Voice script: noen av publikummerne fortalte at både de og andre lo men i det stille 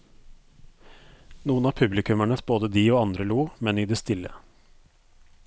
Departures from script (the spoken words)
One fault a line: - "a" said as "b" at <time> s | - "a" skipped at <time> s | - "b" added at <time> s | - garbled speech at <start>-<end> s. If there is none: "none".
- "fortalte" skipped at 2.4 s